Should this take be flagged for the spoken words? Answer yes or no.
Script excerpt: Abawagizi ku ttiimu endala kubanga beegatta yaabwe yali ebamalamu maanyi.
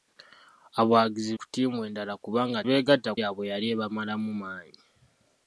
no